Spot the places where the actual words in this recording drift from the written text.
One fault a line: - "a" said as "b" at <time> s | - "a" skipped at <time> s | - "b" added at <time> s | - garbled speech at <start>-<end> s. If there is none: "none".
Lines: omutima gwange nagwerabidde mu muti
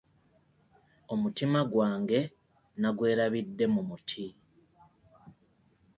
none